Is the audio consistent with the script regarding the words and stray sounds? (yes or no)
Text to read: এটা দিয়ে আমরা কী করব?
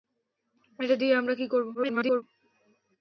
no